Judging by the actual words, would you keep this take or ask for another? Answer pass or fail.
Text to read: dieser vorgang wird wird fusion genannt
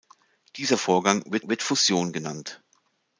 pass